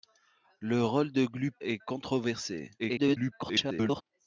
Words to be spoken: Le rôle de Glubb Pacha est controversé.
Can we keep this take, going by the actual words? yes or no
no